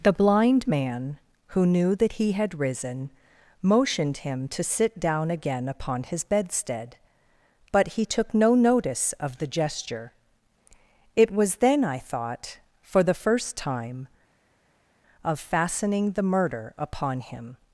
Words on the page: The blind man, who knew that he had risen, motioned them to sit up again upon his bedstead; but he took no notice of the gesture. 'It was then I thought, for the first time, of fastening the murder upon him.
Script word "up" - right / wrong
wrong